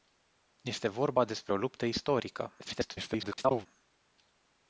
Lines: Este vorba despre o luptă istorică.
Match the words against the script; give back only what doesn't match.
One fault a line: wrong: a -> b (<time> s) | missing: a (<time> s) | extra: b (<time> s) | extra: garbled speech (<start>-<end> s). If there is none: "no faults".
extra: garbled speech (2.6-3.7 s)